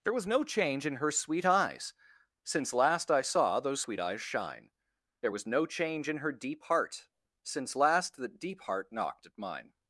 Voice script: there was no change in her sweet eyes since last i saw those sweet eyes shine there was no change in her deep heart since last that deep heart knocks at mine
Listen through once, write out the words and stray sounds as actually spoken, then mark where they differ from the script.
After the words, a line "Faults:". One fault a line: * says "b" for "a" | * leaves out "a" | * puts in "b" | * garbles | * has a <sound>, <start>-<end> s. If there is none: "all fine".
there was no change in her sweet eyes since last i saw those sweet eyes shine there was no change in her deep heart since last that deep heart knocked at mine
Faults:
* says "knocked" for "knocks"